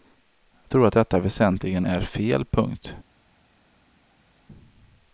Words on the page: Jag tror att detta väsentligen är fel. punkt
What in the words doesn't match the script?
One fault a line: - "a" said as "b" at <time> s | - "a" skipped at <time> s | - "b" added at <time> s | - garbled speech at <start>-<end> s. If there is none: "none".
none